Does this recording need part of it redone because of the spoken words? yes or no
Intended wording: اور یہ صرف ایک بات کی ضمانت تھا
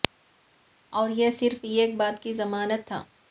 no